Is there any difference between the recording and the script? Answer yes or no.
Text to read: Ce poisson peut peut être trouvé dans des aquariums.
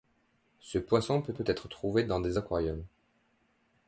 no